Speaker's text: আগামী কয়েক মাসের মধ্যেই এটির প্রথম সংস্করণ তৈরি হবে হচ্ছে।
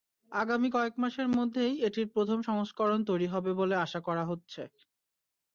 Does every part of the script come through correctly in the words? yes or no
no